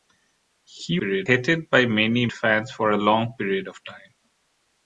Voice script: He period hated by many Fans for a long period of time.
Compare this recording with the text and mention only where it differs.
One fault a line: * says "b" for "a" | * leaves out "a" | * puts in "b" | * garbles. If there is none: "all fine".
all fine